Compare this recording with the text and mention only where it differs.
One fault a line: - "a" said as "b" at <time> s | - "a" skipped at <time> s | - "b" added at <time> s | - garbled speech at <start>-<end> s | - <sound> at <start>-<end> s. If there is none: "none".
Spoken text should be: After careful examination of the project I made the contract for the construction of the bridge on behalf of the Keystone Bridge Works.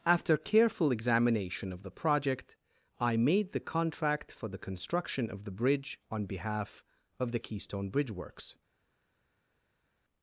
none